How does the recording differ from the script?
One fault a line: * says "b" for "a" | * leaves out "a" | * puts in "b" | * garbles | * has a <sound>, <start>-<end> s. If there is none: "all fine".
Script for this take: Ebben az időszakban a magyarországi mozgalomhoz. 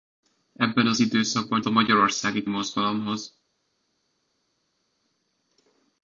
all fine